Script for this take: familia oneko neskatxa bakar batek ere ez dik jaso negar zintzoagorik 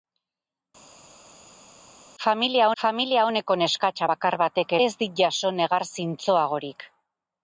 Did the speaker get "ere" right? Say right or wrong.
wrong